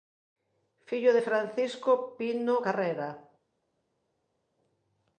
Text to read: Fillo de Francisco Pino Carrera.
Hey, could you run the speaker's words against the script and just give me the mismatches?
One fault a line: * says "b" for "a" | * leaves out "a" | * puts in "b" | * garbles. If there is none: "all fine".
all fine